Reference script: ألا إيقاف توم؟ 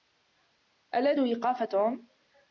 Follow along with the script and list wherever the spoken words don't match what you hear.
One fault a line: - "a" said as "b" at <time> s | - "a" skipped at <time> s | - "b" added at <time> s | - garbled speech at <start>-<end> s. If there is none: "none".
none